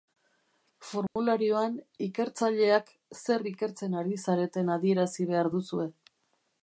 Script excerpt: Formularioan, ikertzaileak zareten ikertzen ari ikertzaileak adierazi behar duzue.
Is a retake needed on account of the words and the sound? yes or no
yes